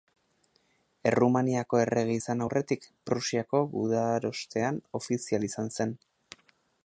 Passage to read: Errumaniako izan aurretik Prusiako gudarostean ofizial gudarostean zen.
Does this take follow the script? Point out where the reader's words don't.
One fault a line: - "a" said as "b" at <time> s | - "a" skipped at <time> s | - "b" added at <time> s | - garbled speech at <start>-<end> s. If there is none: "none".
- "errege" added at 1.8 s
- "gudarostean" said as "izan" at 5.5 s